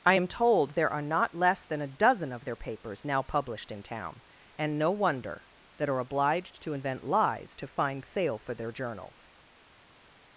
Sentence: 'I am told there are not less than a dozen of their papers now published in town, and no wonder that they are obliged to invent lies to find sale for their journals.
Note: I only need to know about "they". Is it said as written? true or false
false